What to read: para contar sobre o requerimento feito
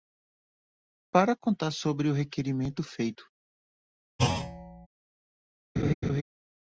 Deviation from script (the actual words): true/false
false